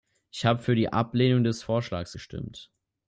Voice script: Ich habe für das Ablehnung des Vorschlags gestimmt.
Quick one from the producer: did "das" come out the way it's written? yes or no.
no